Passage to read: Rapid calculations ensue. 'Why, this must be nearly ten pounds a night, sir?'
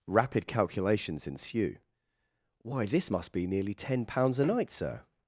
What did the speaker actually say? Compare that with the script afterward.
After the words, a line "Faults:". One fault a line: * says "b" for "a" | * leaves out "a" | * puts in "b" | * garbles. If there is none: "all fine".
Rapid calculations ensue. 'Why, this must be nearly ten pounds a night, sir?'
Faults:
all fine